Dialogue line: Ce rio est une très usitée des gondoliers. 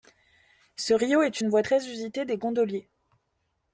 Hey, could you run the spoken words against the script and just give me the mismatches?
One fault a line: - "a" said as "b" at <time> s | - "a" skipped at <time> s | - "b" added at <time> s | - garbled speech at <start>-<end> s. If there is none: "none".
- "voie" added at 1.5 s